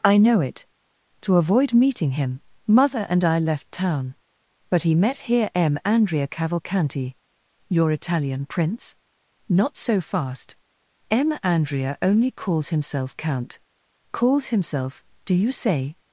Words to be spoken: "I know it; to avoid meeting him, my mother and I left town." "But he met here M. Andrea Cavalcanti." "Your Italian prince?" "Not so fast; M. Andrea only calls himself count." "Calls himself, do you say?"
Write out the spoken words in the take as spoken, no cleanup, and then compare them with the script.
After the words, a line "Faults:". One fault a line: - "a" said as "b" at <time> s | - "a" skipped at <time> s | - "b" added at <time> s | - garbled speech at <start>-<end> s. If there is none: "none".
"I know it; to avoid meeting him, mother and I left town." "But he met here M. Andrea Cavalcanti." "Your Italian prince?" "Not so fast; M. Andrea only calls himself count." "Calls himself, do you say?"
Faults:
- "my" skipped at 2.4 s